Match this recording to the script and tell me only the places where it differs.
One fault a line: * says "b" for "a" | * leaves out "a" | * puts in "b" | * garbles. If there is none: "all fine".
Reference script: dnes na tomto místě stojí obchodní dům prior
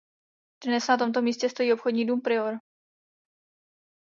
all fine